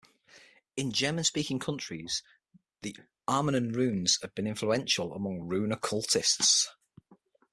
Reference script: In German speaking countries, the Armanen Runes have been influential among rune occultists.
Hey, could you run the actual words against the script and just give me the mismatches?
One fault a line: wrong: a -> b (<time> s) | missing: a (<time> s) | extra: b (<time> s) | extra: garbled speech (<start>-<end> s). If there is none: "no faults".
no faults